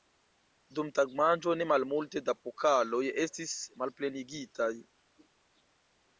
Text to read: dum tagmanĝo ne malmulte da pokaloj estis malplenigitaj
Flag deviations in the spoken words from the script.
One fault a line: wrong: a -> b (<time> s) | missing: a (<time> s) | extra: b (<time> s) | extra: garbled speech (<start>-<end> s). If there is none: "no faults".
no faults